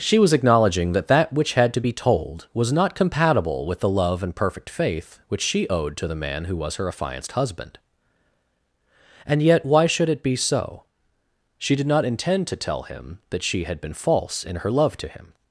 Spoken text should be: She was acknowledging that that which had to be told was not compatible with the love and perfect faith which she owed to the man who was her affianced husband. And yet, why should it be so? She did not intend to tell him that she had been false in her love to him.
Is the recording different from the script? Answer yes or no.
no